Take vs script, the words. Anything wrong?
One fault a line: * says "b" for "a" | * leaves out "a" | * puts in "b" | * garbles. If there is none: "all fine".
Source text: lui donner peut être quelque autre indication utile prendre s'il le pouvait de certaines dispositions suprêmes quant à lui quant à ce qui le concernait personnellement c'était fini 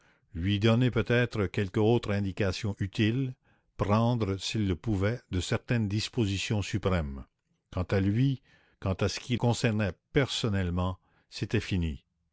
* leaves out "le"